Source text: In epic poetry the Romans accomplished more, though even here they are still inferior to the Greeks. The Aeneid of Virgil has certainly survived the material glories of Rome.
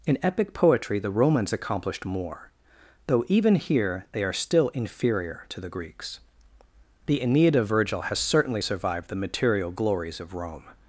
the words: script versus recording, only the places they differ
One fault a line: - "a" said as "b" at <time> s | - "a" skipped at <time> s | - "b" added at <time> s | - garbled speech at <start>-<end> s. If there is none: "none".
none